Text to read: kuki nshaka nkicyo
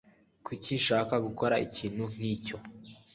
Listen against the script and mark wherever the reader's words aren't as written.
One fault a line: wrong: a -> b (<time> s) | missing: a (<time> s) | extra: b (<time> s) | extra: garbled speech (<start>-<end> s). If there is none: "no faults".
extra: gukora ikintu (1.2 s)